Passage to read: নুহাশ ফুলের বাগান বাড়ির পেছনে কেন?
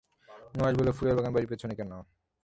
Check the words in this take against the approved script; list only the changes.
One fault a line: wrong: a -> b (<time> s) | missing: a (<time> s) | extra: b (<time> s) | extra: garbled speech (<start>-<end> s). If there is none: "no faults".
extra: বলল (0.8 s)